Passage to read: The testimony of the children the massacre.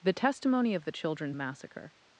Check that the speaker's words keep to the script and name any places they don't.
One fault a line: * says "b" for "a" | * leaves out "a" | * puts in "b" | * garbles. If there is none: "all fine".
all fine